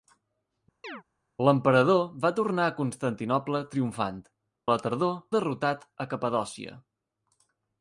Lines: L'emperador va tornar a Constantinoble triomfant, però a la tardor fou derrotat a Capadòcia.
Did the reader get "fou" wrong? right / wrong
wrong